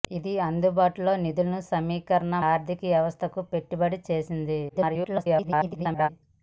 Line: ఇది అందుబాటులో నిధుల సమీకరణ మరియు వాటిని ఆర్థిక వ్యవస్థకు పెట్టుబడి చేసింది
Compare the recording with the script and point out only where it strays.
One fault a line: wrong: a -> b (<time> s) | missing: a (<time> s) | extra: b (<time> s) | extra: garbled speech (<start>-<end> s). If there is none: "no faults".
missing: మరియు వాటిని (2.4 s)
extra: garbled speech (4.7-6.1 s)